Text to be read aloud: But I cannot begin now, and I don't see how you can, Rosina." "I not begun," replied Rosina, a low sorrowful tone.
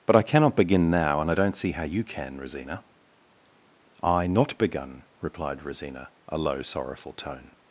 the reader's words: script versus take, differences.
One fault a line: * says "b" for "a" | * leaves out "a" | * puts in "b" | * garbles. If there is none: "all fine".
all fine